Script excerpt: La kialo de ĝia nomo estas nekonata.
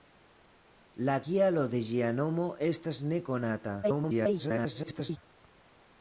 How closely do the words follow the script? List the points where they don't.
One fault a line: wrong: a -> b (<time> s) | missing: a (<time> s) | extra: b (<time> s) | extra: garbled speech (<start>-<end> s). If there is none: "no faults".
extra: garbled speech (3.8-5.2 s)